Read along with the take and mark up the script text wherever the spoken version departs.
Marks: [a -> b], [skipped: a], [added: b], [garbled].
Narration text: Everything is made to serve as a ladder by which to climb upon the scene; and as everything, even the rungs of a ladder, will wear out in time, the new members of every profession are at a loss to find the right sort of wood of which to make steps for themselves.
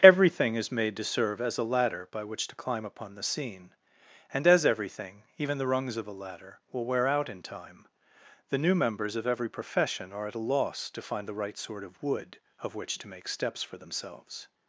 Everything is made to serve as a ladder by which to climb upon the scene; and as everything, even the rungs of a ladder, will wear out in time, the new members of every profession are at a loss to find the right sort of wood of which to make steps for themselves.